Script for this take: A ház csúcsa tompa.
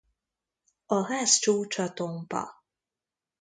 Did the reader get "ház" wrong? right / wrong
right